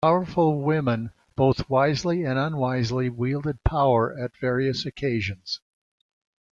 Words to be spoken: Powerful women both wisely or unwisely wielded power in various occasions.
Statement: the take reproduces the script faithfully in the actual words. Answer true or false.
false